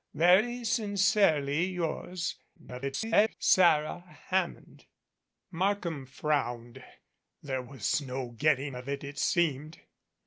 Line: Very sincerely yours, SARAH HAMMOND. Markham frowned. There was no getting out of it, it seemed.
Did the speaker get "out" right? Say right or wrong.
wrong